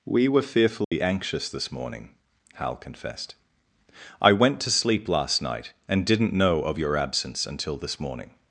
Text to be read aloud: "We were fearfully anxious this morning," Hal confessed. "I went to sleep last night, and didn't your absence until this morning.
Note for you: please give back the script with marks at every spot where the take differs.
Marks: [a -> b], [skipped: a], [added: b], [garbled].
"We were fearfully anxious this morning," Hal confessed. "I went to sleep last night, and didn't [added: know of] your absence until this morning.